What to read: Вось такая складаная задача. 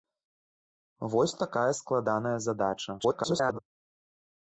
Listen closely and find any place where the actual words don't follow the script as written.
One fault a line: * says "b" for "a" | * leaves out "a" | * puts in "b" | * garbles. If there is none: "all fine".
* garbles